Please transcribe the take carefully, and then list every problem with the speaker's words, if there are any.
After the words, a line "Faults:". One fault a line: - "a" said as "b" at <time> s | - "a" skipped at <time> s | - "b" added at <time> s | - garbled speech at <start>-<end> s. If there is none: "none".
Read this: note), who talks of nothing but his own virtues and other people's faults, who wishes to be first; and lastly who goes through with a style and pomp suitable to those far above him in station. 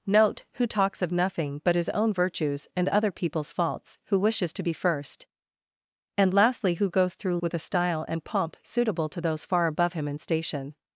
note), who talks of nothing but his own virtues and other people's faults, who wishes to be first; and lastly who goes through with a style and pomp suitable to those far above him in station.
Faults:
none